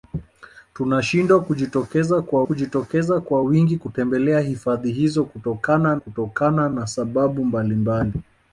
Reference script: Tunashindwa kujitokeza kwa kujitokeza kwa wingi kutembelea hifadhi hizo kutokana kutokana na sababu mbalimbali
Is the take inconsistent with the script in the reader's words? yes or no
no